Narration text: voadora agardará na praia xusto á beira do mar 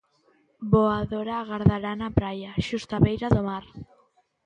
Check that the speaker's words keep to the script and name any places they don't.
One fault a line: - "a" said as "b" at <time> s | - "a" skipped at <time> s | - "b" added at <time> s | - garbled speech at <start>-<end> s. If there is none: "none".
none